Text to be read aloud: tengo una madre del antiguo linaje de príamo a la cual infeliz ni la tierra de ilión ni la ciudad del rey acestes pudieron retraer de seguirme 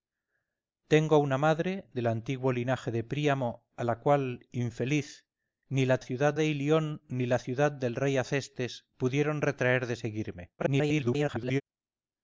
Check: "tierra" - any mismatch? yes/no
yes